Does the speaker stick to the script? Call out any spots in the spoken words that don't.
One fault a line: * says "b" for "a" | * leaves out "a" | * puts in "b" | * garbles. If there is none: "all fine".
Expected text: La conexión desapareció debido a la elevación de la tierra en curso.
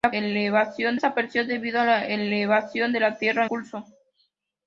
* says "elevación" for "conexión"
* leaves out "en"